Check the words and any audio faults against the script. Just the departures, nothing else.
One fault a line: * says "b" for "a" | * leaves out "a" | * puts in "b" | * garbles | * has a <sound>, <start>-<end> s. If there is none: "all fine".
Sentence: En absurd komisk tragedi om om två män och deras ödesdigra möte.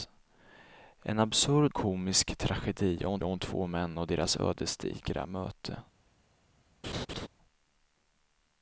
* has a laugh, 6.8-7.3 s